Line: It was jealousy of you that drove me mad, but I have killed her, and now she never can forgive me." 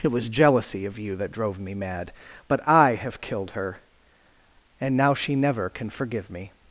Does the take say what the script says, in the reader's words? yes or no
yes